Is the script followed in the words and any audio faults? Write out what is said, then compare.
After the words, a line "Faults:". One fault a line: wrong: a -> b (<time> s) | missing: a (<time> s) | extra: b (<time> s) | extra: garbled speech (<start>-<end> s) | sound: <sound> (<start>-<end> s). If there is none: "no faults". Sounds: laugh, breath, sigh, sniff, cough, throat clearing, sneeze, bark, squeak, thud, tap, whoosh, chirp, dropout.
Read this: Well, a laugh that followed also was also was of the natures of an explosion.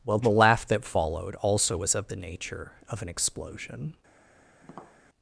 Well, the laugh that followed also was of the nature of an explosion.
Faults:
wrong: a -> the (0.2 s)
missing: also was (1.9 s)
wrong: natures -> nature (2.1 s)
sound: tap (4.6-5.0 s)